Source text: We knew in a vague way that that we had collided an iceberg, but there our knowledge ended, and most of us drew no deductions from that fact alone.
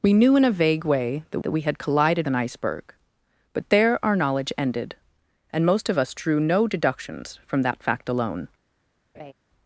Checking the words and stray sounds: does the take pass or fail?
fail